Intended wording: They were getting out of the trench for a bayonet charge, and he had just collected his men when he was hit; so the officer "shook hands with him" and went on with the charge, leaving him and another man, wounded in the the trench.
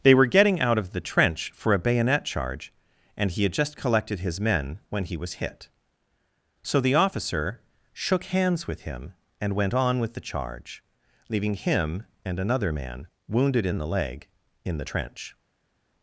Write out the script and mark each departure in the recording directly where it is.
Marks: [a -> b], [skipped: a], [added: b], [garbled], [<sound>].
They were getting out of the trench for a bayonet charge, and he had just collected his men when he was hit; so the officer "shook hands with him" and went on with the charge, leaving him and another man, wounded in the [added: leg in] the trench.